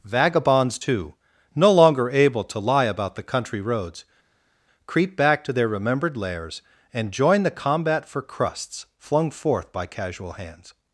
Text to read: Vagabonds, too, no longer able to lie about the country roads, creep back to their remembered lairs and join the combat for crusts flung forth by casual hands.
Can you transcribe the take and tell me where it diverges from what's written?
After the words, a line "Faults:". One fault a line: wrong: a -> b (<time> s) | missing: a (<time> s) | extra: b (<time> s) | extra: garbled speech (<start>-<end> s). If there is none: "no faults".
Vagabonds, too, no longer able to lie about the country roads, creep back to their remembered lairs and join the combat for crusts flung forth by casual hands.
Faults:
no faults